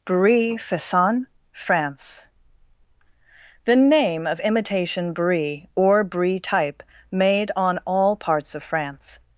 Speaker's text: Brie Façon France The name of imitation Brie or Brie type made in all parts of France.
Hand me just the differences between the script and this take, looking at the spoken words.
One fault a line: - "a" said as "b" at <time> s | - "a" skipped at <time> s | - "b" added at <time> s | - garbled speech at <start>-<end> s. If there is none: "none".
- "in" said as "on" at 7.6 s